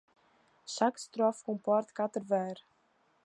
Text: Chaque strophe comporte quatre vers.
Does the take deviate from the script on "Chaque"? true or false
false